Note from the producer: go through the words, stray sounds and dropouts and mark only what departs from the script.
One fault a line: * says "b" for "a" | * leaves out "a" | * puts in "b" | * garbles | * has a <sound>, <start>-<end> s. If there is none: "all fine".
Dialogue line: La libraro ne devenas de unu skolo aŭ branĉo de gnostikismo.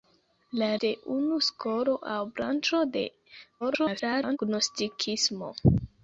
* leaves out "libraro ne devenas"
* garbles